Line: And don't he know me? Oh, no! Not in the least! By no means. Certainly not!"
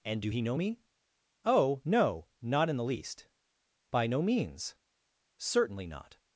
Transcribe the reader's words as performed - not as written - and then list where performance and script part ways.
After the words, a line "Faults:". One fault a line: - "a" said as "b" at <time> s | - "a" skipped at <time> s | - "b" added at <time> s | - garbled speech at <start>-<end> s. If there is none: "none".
And do he know me? Oh, no! Not in the least! By no means. Certainly not!"
Faults:
- "don't" said as "do" at 0.2 s